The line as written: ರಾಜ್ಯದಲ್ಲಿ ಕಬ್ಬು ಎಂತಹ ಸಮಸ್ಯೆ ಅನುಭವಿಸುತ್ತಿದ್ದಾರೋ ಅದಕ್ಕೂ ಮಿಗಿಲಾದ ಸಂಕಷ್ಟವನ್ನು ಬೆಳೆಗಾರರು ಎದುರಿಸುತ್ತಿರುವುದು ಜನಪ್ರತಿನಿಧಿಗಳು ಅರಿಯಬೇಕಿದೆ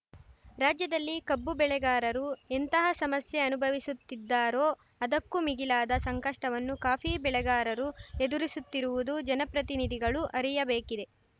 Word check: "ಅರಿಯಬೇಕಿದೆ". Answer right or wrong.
right